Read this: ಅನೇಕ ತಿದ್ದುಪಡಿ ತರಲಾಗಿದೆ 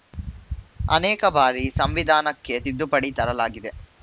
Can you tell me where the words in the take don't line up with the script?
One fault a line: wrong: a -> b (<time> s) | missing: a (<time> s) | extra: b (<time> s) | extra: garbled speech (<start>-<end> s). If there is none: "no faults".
extra: ಬಾರಿ ಸಂವಿಧಾನಕ್ಕೆ (1.4 s)